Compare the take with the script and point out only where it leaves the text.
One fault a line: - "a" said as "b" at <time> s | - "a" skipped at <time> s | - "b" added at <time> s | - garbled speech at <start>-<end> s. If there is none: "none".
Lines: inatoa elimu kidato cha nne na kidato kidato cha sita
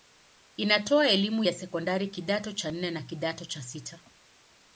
- "ya sekondari" added at 1.4 s
- "kidato" skipped at 3.4 s